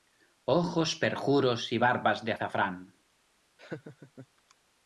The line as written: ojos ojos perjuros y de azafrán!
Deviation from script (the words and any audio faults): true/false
true